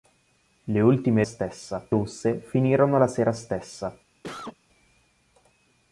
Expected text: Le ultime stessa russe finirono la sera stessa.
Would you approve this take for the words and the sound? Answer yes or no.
no